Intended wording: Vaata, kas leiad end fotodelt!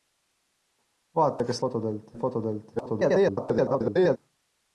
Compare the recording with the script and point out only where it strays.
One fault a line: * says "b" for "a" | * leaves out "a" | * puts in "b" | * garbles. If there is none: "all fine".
* says "fotodelt" for "leiad"
* garbles